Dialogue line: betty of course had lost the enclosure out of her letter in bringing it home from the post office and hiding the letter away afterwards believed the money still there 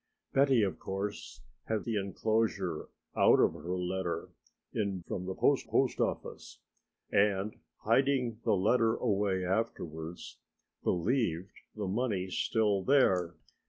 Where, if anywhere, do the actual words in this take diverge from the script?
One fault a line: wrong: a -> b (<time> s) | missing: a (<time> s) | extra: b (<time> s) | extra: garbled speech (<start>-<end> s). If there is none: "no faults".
missing: lost (1.9 s)
missing: bringing it home (5.0 s)
extra: post (5.6 s)